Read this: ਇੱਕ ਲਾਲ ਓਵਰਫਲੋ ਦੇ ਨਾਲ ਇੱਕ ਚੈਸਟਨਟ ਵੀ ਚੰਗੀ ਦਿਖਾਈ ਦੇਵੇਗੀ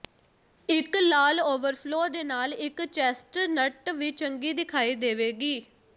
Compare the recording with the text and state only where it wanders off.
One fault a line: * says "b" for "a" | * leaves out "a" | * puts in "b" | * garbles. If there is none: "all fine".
all fine